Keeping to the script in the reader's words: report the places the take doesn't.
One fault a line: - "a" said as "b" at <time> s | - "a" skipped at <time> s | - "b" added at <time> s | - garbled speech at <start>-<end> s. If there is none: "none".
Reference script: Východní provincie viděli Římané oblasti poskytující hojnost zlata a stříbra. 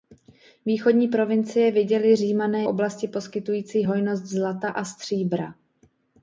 none